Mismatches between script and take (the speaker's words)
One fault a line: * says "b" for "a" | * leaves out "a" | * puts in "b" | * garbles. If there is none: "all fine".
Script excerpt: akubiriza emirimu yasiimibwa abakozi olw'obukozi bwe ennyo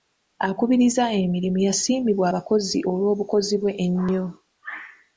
all fine